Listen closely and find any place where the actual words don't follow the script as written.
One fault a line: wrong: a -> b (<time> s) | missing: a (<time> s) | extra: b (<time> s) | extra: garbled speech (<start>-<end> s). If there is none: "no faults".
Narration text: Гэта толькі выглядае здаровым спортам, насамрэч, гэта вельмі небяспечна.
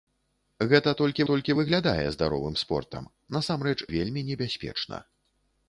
extra: толькі (1.3 s)
missing: гэта (3.8 s)